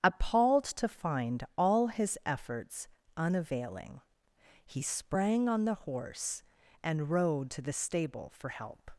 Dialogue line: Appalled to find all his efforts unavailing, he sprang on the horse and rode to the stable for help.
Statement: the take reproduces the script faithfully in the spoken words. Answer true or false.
true